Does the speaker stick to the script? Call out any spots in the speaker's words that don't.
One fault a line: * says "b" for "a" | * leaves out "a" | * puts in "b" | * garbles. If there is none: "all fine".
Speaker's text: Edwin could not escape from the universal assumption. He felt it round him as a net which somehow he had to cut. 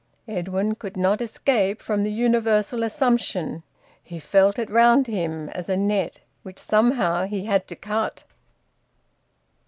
all fine